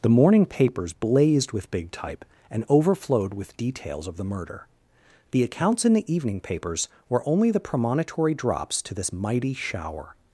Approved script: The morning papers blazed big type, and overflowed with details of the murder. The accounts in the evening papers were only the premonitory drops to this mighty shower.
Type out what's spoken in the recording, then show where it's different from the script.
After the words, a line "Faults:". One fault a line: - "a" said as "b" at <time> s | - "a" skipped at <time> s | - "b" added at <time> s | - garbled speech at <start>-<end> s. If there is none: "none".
The morning papers blazed with big type, and overflowed with details of the murder. The accounts in the evening papers were only the premonitory drops to this mighty shower.
Faults:
- "with" added at 1.5 s